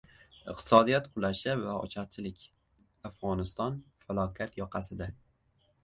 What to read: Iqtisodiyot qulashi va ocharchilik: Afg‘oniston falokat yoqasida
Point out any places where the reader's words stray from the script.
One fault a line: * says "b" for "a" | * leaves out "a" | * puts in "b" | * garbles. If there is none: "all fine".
all fine